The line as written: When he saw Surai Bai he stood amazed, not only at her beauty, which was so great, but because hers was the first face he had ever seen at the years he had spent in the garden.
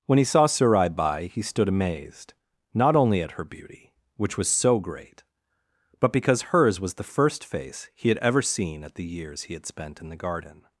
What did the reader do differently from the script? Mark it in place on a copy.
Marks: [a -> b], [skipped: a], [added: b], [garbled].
When he saw Surai Bai he stood amazed, not only at her beauty, which was so great, but because hers was the first face he had ever seen at the years he had spent in the garden.